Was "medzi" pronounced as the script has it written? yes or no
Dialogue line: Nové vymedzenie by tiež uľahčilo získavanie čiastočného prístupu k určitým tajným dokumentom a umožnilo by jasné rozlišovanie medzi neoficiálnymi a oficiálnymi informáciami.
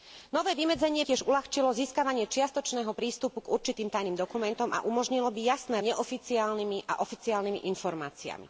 no